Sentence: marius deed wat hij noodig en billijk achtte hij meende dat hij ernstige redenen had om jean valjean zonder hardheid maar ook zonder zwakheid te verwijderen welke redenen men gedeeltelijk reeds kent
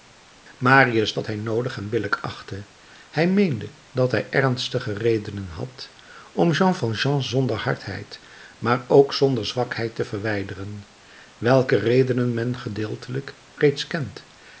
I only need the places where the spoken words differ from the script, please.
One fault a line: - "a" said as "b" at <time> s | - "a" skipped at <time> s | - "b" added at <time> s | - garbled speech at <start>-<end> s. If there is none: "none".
- "deed" skipped at 1.1 s